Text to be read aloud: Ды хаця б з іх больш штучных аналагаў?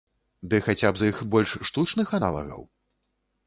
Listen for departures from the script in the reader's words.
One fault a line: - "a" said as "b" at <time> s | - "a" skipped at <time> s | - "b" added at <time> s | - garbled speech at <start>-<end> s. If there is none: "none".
none